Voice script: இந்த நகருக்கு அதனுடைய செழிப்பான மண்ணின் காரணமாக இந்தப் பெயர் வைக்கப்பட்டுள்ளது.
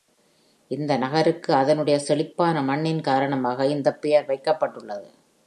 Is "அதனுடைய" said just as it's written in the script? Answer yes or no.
yes